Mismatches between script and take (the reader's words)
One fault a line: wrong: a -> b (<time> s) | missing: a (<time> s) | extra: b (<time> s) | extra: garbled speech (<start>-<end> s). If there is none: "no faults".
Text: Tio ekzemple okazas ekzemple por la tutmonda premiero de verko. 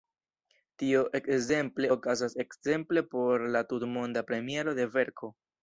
no faults